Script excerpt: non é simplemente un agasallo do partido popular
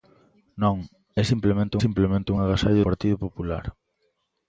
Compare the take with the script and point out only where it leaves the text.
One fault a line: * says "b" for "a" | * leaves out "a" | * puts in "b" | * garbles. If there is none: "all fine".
* puts in "simplemente"
* leaves out "do"